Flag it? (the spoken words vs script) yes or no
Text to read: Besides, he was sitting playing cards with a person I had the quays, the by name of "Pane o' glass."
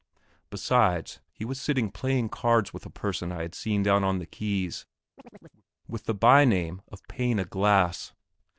yes